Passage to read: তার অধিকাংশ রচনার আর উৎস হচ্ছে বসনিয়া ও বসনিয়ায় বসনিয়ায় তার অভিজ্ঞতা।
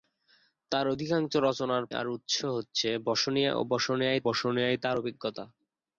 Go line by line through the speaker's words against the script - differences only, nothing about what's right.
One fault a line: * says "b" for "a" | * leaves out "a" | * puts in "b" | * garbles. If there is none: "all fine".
all fine